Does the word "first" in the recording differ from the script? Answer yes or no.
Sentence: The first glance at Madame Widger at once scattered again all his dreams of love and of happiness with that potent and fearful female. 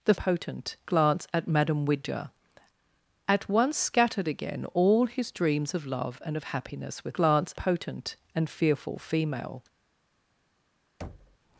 yes